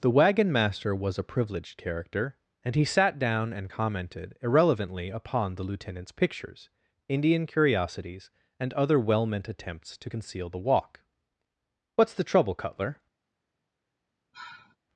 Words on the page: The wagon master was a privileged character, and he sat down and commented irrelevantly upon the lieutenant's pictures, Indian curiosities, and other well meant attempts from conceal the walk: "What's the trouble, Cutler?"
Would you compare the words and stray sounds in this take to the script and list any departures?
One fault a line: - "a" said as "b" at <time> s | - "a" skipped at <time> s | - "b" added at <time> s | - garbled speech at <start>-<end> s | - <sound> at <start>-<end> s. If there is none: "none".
- "from" said as "to" at 10.0 s
- sigh at 14.3-14.8 s